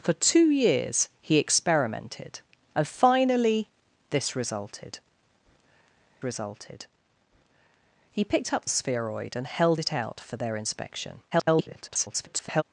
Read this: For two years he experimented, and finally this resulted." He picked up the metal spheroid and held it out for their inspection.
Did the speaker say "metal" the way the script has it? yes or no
no